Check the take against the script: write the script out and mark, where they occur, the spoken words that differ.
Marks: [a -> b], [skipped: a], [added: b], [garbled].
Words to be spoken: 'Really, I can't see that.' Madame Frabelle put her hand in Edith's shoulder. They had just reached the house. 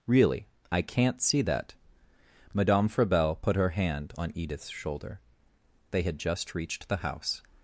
'Really, I can't see that.' Madame Frabelle put her hand [in -> on] Edith's shoulder. They had just reached the house.